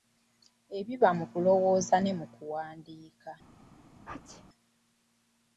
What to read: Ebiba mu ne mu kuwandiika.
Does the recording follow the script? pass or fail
fail